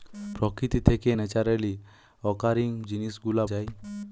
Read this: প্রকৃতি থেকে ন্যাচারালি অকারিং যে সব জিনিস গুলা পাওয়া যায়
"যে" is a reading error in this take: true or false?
true